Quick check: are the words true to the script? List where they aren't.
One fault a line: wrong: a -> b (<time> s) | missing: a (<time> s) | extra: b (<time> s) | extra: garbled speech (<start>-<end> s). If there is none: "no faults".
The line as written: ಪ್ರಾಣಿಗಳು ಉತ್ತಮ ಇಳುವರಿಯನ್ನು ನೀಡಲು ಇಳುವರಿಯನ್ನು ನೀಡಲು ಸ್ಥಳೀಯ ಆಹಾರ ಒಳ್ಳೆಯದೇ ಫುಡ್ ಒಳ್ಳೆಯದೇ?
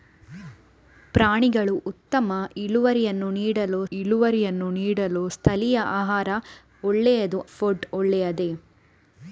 no faults